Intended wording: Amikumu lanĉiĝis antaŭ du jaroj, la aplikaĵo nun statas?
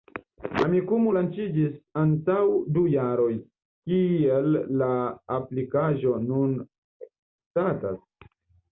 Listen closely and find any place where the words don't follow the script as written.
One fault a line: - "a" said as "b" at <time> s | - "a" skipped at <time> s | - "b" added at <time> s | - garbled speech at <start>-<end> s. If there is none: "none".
- "kiel" added at 3.9 s